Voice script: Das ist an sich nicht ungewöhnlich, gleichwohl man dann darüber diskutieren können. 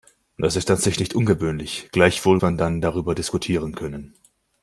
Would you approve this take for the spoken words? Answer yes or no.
yes